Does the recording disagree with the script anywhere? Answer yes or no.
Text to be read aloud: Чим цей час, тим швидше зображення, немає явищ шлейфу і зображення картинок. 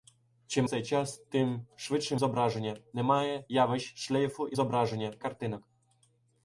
no